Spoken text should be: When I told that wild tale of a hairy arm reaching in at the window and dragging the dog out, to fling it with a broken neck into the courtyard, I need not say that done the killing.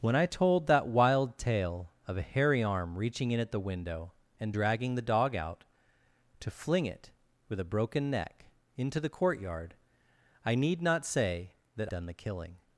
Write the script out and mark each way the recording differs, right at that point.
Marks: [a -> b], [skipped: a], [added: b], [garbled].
When I told that wild tale of a hairy arm reaching in at the window and dragging the dog out, to fling it with a broken neck into the courtyard, I need not say that done the killing.